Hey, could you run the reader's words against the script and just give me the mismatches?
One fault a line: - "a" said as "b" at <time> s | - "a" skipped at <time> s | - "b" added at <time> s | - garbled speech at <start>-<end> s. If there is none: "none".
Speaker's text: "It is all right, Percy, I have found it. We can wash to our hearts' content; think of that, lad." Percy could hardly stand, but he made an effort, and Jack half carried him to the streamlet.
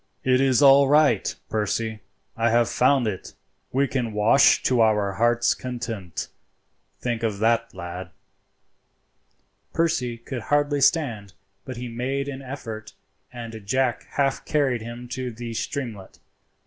none